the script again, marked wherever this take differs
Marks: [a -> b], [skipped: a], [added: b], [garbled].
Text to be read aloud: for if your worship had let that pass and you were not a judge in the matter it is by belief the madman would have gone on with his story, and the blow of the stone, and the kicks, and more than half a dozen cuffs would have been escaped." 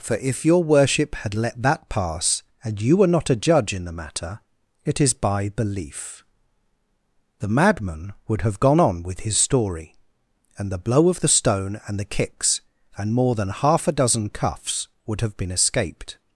for if your worship had let that pass and you were not a judge in the matter it is by belief the madman would have gone on with his story, and the blow of the stone, and the kicks, and more than half a dozen cuffs would have been escaped."